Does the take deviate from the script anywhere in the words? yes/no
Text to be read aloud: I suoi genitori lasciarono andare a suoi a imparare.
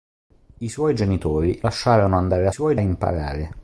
no